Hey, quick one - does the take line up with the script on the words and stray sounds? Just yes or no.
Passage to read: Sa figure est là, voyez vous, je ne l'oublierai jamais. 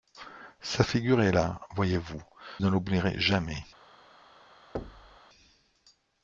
no